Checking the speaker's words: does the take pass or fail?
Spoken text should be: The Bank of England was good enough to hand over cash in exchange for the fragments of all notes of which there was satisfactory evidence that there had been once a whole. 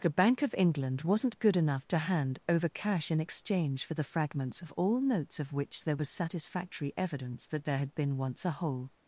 fail